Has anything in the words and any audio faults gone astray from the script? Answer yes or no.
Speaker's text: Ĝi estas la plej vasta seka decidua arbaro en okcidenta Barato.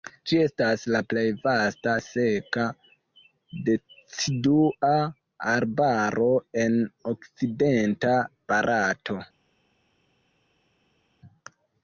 no